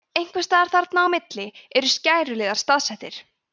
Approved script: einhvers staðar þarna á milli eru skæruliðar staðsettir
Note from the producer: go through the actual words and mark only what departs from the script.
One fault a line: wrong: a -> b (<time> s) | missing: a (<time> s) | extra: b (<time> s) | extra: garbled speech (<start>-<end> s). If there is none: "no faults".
no faults